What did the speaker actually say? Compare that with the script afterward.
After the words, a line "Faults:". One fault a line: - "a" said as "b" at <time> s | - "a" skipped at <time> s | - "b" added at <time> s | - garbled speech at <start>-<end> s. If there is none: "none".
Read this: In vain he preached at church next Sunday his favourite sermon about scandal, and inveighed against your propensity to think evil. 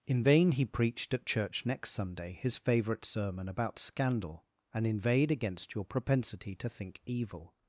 In vain he preached at church next Sunday his favourite sermon about scandal, and inveighed against your propensity to think evil.
Faults:
none